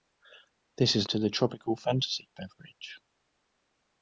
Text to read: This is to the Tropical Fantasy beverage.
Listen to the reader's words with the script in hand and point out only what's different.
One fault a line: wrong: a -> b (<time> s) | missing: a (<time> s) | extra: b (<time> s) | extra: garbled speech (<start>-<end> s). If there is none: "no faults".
no faults